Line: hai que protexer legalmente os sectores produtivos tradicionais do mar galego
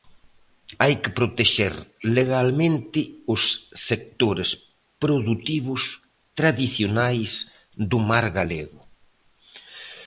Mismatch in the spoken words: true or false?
false